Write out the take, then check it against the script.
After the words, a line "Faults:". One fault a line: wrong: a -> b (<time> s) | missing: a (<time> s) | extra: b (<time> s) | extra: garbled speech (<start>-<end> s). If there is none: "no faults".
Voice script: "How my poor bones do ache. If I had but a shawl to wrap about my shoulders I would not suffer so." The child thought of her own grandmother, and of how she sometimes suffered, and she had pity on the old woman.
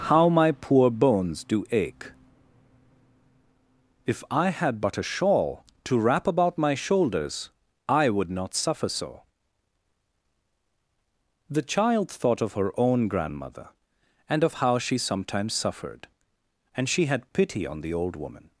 "How my poor bones do ache. If I had but a shawl to wrap about my shoulders I would not suffer so." The child thought of her own grandmother, and of how she sometimes suffered, and she had pity on the old woman.
Faults:
no faults